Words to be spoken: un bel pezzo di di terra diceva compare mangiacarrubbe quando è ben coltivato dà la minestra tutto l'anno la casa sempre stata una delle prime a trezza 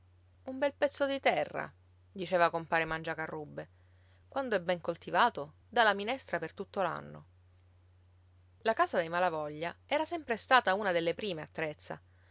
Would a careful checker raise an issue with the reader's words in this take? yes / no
yes